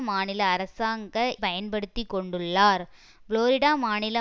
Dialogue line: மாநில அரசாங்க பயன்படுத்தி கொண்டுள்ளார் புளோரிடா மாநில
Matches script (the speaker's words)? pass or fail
pass